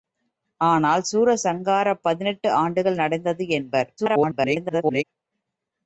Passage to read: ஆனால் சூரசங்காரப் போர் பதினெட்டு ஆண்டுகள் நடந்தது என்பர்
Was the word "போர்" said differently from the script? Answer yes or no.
yes